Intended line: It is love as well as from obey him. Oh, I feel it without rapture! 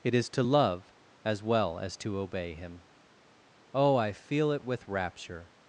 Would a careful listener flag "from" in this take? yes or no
yes